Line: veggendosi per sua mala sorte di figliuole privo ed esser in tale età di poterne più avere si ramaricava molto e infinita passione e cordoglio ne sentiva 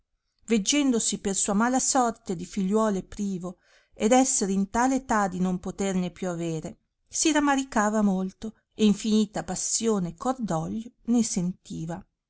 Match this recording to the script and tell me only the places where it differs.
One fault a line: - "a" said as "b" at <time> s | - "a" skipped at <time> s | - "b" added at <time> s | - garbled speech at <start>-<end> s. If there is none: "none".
- "non" added at 5.4 s